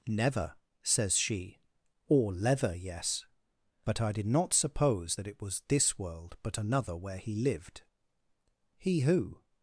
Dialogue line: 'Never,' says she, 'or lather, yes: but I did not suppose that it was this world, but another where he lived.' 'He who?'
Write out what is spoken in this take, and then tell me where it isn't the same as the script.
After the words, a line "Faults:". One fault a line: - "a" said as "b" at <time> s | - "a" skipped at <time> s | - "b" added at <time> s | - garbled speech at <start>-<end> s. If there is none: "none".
'Never,' says she, 'or leather, yes: but I did not suppose that it was this world, but another where he lived.' 'He who?'
Faults:
- "lather" said as "leather" at 2.3 s